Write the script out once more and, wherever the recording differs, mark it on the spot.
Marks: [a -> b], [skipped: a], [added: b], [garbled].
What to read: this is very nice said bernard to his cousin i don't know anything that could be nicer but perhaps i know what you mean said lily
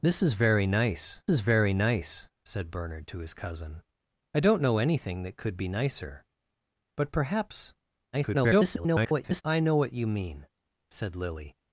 this is very nice [added: is very nice] said bernard to his cousin i don't know anything that could be nicer but perhaps [garbled] i know what you mean said lily